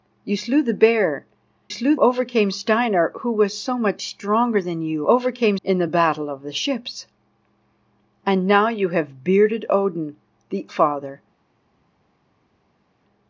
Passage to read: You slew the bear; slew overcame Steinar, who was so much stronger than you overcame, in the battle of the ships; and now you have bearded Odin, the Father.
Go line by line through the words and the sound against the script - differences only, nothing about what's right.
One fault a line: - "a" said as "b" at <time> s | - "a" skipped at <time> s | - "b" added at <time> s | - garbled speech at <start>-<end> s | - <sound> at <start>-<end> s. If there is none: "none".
none